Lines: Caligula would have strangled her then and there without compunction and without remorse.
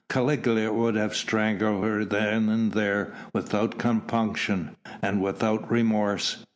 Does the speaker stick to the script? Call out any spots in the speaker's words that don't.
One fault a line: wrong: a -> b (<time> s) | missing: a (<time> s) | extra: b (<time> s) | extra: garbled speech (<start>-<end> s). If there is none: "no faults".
no faults